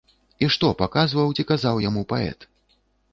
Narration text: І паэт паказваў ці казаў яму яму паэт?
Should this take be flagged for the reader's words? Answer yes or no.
yes